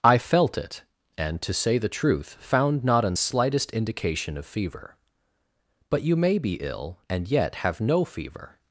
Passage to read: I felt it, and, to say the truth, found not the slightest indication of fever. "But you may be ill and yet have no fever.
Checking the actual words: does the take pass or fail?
fail